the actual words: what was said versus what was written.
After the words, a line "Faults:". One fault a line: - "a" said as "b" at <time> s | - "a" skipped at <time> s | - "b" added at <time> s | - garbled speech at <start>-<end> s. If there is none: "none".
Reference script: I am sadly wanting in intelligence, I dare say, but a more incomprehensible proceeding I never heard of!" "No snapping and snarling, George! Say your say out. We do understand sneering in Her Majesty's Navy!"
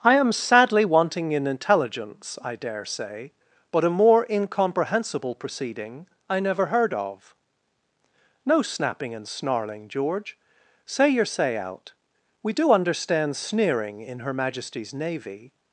I am sadly wanting in intelligence, I dare say, but a more incomprehensible proceeding I never heard of!" "No snapping and snarling, George! Say your say out. We do understand sneering in Her Majesty's Navy!"
Faults:
none